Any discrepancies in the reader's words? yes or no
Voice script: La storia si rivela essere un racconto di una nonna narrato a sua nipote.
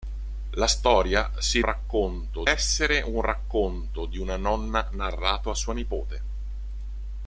yes